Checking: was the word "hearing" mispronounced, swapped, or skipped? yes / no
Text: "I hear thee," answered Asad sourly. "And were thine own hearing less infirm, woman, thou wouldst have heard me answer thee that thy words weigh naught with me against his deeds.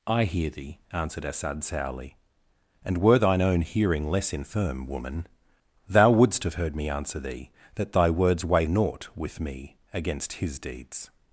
no